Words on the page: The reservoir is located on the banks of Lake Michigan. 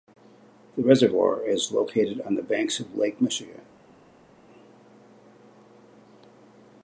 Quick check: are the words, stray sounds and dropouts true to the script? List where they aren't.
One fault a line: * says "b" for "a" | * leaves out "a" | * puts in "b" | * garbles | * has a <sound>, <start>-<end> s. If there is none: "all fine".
all fine